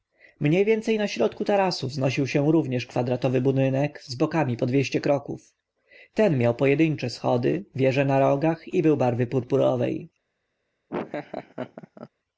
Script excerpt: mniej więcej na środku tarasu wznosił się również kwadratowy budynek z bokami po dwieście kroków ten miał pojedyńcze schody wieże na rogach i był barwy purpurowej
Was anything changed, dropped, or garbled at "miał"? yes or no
no